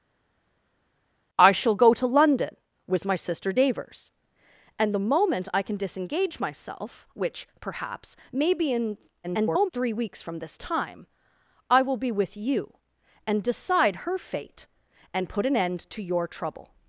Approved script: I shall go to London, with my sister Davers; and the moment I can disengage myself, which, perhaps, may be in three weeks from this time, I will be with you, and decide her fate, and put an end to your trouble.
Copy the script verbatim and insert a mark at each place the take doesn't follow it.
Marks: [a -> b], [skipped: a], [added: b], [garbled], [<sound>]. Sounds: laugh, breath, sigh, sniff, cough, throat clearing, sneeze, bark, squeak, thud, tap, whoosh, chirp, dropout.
I shall go to London, with my sister Davers; and the moment I can disengage myself, which, perhaps, may be in [garbled] three weeks from this time, I will be with you, and decide her fate, and put an end to your trouble.